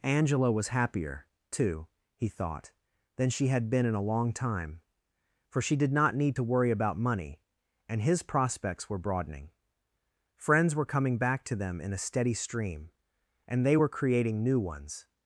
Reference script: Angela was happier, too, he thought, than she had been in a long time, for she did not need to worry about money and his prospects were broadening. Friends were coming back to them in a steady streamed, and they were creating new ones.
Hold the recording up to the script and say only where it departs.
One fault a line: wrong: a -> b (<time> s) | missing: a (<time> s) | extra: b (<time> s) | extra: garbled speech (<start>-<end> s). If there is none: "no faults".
wrong: streamed -> stream (12.3 s)